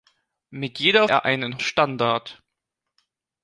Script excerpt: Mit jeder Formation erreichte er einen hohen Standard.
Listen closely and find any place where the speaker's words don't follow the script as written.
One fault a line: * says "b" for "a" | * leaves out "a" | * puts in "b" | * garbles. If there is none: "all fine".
* leaves out "Formation erreichte"
* leaves out "hohen"